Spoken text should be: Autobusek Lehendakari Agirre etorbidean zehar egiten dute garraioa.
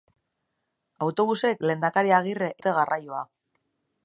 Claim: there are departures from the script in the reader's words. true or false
true